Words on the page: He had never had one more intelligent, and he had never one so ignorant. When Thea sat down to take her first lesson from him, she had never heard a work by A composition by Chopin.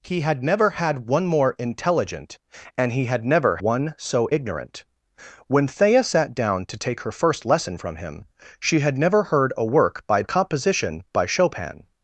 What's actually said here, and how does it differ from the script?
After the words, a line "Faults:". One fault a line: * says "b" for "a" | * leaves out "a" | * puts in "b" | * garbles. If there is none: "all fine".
He had never had one more intelligent, and he had never one so ignorant. When Thea sat down to take her first lesson from him, she had never heard a work by A composition by Chopin.
Faults:
all fine